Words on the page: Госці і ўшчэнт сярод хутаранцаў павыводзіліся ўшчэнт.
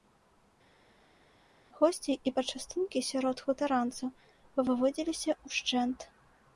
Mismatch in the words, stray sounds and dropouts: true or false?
true